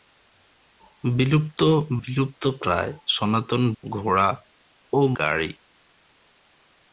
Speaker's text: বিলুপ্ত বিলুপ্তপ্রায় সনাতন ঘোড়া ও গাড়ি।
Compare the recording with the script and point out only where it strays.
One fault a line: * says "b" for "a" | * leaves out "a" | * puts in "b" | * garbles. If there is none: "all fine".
all fine